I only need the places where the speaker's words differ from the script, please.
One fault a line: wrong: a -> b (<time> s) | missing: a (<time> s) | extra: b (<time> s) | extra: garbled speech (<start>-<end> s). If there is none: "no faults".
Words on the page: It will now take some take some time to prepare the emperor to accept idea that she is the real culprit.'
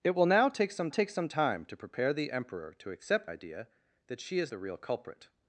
no faults